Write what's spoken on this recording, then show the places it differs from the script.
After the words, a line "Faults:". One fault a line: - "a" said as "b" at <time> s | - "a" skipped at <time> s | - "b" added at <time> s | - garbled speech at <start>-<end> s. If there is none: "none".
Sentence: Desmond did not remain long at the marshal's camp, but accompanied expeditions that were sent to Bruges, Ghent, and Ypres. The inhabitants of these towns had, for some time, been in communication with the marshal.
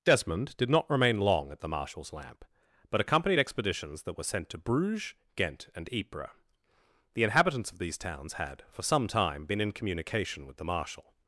Desmond did not remain long at the marshal's lamp, but accompanied expeditions that were sent to Bruges, Ghent, and Ypres. The inhabitants of these towns had, for some time, been in communication with the marshal.
Faults:
- "camp" said as "lamp" at 2.1 s